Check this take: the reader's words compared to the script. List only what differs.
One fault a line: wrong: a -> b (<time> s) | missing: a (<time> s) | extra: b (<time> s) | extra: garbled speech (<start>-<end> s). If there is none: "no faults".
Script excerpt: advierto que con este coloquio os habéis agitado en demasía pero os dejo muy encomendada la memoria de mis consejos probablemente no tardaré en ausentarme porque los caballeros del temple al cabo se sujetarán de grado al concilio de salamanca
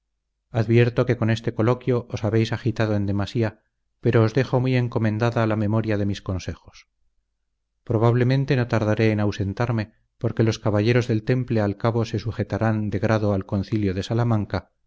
no faults